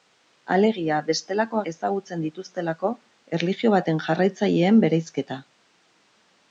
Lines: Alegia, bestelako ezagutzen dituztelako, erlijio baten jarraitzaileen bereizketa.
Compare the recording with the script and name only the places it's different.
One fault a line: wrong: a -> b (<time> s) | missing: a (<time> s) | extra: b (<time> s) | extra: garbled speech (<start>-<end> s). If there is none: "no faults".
no faults